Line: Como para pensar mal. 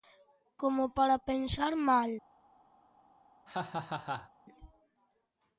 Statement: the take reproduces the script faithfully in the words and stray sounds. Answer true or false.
false